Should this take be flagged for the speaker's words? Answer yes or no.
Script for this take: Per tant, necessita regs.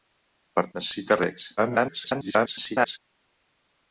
yes